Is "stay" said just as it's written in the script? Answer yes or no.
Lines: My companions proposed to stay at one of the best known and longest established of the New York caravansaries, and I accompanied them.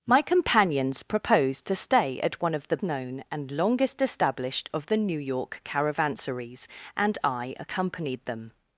yes